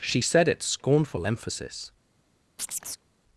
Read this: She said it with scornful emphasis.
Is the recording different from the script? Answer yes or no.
yes